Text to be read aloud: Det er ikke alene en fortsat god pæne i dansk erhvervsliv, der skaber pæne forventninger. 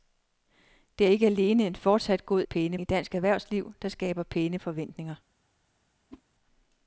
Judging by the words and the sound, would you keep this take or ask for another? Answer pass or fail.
fail